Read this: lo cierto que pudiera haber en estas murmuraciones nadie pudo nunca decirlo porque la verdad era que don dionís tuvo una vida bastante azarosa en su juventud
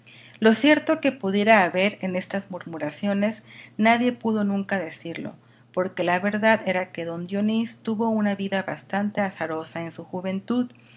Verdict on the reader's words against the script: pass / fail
pass